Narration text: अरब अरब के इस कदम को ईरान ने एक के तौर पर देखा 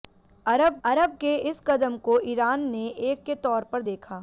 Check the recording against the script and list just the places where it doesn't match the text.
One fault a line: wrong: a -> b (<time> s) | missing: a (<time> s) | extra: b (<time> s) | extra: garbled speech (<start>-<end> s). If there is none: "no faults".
no faults